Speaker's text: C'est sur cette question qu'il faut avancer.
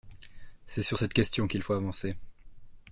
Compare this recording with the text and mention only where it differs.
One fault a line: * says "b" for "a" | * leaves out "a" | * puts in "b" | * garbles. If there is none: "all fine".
all fine